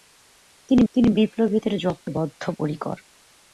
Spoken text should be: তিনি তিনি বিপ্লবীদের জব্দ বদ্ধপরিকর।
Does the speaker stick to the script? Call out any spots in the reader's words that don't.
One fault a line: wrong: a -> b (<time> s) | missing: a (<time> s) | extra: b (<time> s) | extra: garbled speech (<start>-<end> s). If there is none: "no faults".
no faults